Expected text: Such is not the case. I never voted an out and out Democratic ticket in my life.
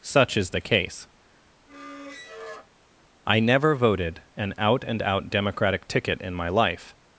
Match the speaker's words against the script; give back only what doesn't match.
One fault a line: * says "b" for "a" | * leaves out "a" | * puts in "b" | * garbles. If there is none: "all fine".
* leaves out "not"